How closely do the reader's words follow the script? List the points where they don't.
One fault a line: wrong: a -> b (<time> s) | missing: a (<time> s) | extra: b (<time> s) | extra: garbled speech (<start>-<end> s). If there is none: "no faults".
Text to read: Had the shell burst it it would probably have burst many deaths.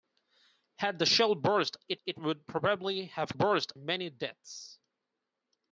no faults